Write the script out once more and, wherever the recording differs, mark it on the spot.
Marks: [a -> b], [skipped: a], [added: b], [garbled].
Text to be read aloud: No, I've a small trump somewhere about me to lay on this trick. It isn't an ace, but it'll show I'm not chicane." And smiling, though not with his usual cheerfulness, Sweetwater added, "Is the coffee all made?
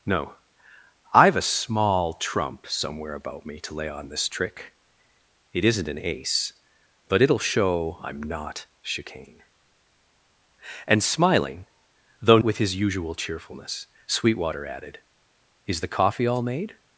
No, I've a small trump somewhere about me to lay on this trick. It isn't an ace, but it'll show I'm not chicane." And smiling, though [skipped: not] with his usual cheerfulness, Sweetwater added, "Is the coffee all made?